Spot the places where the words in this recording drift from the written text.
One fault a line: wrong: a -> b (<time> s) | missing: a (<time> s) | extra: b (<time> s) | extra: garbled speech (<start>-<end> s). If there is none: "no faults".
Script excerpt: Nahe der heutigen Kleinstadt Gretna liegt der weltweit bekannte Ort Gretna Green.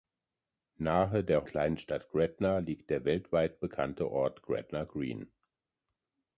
missing: heutigen (1.4 s)